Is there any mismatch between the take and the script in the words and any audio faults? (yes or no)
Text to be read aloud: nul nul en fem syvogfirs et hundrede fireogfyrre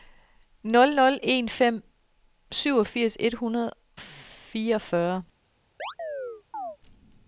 yes